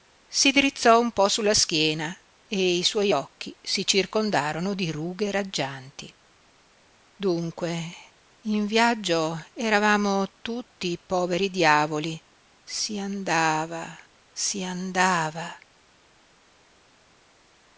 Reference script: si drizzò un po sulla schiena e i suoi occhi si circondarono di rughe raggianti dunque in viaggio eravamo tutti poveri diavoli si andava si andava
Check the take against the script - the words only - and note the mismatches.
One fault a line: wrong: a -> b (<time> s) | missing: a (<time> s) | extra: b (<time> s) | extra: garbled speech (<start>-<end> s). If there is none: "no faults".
no faults